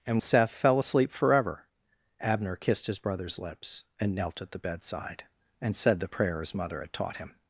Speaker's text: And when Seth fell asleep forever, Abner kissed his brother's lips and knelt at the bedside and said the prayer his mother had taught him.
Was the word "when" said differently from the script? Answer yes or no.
yes